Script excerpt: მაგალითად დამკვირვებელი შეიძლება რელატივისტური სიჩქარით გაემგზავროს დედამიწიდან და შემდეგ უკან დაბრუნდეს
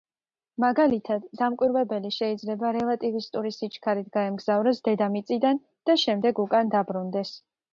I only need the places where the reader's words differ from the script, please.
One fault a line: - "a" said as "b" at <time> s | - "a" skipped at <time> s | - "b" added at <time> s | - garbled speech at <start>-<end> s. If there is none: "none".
none